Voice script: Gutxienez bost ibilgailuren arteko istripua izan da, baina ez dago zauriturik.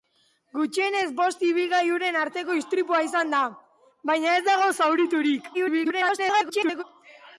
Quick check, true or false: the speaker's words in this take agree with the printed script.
false